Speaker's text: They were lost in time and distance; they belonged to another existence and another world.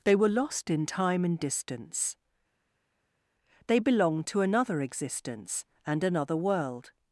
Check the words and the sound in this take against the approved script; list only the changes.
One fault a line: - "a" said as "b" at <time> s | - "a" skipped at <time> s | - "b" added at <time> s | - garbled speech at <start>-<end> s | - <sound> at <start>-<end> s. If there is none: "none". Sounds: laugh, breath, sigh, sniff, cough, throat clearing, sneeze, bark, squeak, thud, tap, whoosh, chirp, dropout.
none